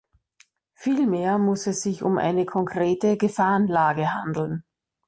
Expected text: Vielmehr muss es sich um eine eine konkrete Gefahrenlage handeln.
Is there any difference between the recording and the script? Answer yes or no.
yes